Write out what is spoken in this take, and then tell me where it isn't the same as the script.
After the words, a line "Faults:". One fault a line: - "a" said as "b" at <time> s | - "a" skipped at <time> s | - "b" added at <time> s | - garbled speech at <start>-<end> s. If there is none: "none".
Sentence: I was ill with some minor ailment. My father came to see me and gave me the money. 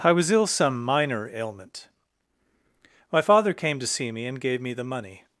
I was ill some minor ailment. My father came to see me and gave me the money.
Faults:
- "with" skipped at 0.5 s